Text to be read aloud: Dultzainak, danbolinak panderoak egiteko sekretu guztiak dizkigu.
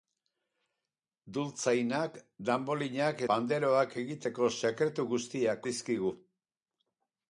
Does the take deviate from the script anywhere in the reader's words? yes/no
no